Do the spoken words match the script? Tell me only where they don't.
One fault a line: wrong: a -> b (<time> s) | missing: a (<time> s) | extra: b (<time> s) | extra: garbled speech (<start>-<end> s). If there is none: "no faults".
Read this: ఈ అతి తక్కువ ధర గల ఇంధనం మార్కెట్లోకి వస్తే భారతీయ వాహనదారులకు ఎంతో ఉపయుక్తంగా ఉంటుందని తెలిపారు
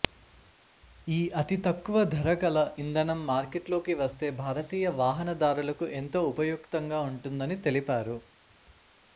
no faults